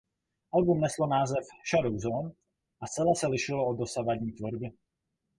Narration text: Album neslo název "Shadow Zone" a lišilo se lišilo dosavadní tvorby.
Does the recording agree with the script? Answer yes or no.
no